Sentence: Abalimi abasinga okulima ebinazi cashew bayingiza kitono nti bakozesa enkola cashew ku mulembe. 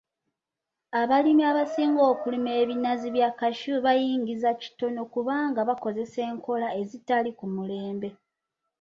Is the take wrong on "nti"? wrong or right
wrong